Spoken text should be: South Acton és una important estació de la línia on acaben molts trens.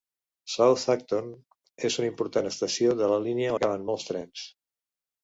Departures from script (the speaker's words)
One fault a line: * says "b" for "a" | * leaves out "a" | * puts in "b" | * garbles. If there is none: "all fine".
* leaves out "on"